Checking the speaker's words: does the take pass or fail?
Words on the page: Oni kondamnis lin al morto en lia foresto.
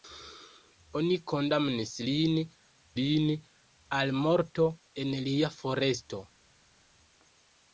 fail